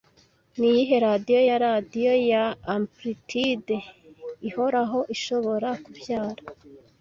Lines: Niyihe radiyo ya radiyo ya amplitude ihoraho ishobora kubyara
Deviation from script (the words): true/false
false